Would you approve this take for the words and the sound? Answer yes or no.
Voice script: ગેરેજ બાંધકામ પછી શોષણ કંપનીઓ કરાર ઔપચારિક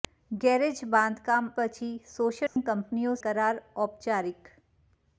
no